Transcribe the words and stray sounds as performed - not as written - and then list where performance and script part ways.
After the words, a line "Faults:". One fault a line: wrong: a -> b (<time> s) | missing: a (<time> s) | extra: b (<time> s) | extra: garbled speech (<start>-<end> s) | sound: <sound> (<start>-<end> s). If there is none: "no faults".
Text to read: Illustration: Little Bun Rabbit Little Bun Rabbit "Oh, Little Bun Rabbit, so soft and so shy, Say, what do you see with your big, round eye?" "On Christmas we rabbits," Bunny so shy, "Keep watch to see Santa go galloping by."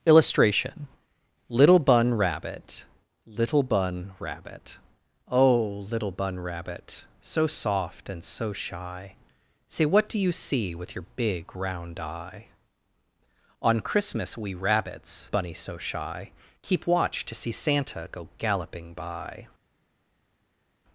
Illustration: Little Bun Rabbit Little Bun Rabbit "Oh, Little Bun Rabbit, so soft and so shy, Say, what do you see with your big, round eye?" "On Christmas we rabbits," Bunny so shy, "Keep watch to see Santa go galloping by."
Faults:
no faults